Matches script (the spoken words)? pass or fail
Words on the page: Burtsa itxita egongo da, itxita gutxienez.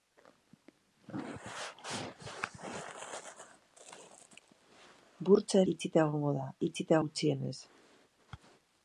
pass